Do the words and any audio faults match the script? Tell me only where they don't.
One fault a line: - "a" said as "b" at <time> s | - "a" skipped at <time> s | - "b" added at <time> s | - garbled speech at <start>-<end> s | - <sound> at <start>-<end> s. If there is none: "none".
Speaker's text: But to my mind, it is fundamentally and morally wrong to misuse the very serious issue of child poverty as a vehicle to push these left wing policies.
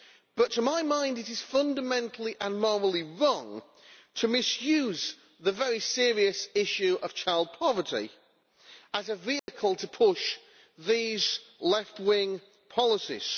- dropout at 9.4-9.5 s